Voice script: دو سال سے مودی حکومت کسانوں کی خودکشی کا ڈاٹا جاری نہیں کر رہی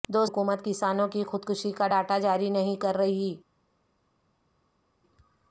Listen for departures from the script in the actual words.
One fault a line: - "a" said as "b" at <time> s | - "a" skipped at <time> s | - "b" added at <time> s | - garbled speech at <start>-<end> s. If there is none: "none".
- "سال سے مودی" skipped at 0.2 s